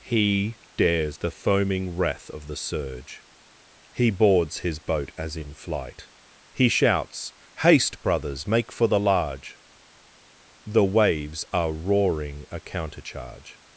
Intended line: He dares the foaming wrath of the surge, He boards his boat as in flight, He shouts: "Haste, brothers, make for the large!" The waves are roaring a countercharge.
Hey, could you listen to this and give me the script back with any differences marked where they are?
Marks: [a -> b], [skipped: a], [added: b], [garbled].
He dares the foaming wrath of the surge, He boards his boat as in flight, He shouts: "Haste, brothers, make for the large!" The waves are roaring a countercharge.